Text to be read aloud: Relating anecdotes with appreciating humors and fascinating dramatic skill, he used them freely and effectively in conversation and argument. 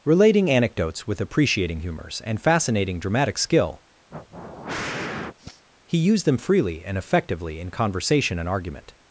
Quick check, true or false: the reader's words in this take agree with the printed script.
true